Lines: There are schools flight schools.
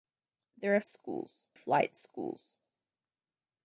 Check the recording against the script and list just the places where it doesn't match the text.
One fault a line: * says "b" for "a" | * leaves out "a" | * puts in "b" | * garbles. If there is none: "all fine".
all fine